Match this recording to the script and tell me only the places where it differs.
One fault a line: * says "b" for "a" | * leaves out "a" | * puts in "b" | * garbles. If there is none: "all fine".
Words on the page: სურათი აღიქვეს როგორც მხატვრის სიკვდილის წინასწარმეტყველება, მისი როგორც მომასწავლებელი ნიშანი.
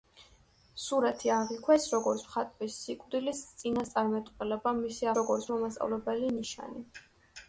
all fine